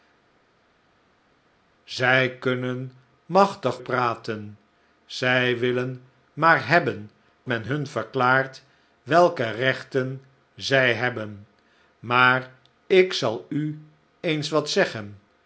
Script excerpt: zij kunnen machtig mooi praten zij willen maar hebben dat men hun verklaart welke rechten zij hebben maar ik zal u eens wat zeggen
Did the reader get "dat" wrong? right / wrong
wrong